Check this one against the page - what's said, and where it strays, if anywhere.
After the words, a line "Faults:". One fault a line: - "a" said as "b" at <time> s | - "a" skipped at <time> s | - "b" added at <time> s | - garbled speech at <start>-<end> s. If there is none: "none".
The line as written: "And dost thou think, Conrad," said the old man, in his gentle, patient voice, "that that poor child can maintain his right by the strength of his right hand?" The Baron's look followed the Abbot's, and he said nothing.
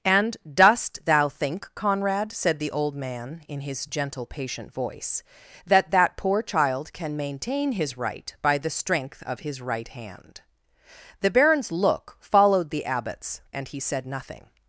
"And dost thou think, Conrad," said the old man, in his gentle, patient voice, "that that poor child can maintain his right by the strength of his right hand?" The Baron's look followed the Abbot's, and he said nothing.
Faults:
none